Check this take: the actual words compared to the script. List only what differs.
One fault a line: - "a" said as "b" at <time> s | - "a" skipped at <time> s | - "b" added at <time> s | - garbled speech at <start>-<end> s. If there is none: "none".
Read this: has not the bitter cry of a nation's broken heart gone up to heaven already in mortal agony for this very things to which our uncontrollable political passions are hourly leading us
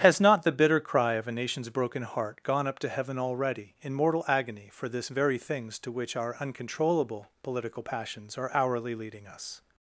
none